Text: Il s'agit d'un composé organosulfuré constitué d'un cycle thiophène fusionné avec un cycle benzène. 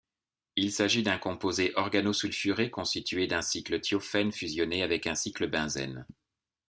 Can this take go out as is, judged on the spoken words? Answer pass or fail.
pass